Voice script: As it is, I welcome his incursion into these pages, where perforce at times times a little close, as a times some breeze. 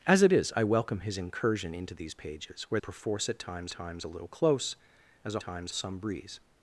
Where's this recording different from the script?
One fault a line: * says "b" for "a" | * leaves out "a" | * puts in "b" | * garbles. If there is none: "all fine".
all fine